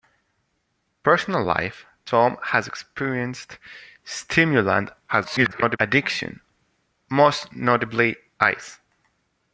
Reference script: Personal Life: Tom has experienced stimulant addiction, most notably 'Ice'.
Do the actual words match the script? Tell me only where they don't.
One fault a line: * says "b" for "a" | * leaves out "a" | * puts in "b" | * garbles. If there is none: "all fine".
* garbles